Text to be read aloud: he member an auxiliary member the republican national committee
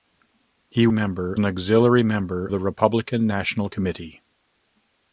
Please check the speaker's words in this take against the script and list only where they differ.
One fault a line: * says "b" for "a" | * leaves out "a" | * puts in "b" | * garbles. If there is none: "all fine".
all fine